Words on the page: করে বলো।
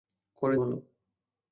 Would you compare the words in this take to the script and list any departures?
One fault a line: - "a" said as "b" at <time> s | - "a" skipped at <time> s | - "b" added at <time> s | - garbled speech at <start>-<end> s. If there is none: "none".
none